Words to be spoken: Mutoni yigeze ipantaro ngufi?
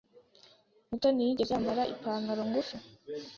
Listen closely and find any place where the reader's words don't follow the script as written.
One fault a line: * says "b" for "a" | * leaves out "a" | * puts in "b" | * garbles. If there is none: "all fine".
* puts in "yambara"